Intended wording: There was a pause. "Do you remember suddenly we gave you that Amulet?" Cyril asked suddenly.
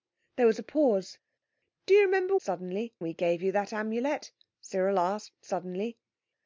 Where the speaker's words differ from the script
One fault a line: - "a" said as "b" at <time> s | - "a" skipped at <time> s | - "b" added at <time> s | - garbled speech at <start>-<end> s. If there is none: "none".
none